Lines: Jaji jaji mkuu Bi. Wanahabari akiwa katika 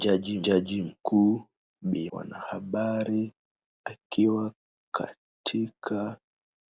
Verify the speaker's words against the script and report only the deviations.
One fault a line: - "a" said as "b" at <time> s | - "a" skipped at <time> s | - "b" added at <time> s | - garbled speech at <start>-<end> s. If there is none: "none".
none